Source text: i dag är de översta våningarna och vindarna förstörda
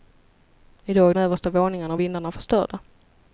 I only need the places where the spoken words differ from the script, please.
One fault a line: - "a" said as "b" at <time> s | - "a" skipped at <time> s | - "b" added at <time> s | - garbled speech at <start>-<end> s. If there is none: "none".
- "de" skipped at 1.1 s